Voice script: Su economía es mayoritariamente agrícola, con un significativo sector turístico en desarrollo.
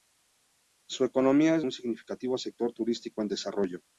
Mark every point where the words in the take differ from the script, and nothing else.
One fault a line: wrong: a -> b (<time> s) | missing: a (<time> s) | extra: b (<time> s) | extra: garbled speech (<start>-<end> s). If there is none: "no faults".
missing: mayoritariamente agrícola con (1.6 s)